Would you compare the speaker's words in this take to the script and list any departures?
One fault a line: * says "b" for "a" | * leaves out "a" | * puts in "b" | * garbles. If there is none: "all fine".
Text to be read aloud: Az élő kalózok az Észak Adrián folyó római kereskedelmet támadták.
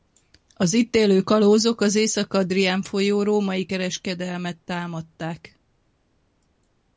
* puts in "itt"